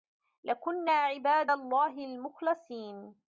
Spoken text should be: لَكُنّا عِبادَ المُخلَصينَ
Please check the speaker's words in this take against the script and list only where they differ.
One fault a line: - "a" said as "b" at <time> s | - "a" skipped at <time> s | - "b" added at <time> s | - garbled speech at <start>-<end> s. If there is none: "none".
- "اللَّهِ" added at 1.5 s